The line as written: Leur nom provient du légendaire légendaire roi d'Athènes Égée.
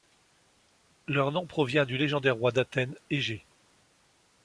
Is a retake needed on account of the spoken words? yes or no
yes